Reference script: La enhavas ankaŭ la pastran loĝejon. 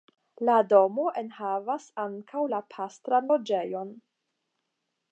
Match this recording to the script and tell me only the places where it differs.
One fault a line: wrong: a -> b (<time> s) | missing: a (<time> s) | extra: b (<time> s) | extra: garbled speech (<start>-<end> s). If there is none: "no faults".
extra: domo (0.7 s)